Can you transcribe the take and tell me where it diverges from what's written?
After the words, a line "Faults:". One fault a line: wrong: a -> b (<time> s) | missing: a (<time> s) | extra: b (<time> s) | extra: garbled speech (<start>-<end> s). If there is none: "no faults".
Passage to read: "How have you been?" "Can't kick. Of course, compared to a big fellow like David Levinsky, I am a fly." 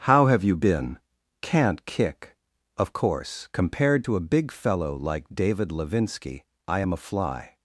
"How have you been?" "Can't kick. Of course, compared to a big fellow like David Levinsky, I am a fly."
Faults:
no faults